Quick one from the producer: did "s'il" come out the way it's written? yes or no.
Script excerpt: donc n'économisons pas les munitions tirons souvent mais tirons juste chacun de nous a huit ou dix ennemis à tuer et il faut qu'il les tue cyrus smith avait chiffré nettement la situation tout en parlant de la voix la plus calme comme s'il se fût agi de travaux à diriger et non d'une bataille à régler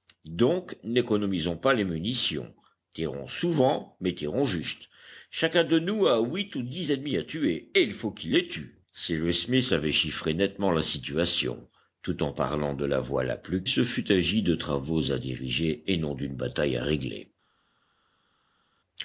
no